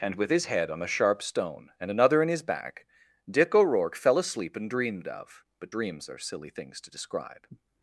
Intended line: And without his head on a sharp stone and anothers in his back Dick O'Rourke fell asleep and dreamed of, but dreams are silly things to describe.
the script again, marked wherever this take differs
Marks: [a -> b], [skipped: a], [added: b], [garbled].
And [without -> with] his head on a sharp stone and [anothers -> another] in his back Dick O'Rourke fell asleep and dreamed of, but dreams are silly things to describe.